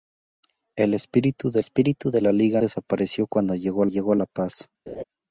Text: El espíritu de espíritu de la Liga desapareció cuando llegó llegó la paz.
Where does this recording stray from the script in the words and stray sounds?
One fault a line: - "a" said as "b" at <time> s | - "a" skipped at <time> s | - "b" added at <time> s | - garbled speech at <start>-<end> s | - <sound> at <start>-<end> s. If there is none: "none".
- laugh at 4.9-5.0 s